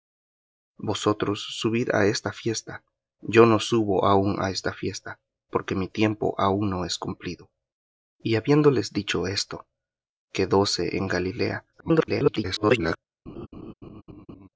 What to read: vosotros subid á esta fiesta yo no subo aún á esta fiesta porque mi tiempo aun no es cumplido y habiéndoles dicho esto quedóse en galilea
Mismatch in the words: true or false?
true